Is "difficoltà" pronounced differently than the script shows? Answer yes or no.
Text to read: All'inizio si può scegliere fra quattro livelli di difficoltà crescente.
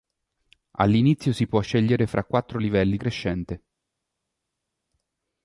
yes